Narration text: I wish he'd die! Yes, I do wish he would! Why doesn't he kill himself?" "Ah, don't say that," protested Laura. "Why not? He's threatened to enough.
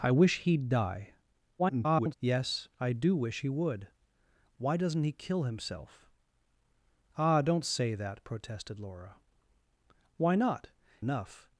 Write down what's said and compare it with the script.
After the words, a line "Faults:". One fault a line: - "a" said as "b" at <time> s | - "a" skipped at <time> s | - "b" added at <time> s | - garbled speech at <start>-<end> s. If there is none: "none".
I wish he'd die! [garbled] Yes, I do wish he would! Why doesn't he kill himself?" "Ah, don't say that," protested Laura. "Why not? Enough.
Faults:
- garbled speech at 1.6-2.1 s
- "He's threatened to" skipped at 10.7 s